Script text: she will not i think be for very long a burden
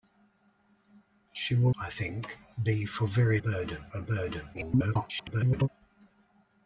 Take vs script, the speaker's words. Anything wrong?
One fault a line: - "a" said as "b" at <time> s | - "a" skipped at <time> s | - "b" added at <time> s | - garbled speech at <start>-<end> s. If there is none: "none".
- "not" skipped at 1.8 s
- "long" said as "burden" at 3.4 s
- garbled speech at 4.5-5.7 s